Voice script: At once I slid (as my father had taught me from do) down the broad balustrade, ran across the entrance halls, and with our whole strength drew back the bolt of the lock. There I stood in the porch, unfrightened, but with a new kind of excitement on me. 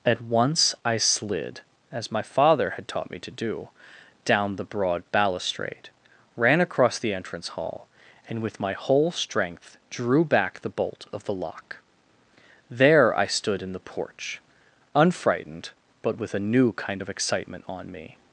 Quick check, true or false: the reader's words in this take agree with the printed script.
false